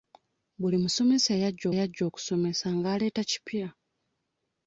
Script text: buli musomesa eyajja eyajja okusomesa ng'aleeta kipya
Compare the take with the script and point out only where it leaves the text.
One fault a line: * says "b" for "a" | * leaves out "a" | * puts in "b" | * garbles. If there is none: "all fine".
all fine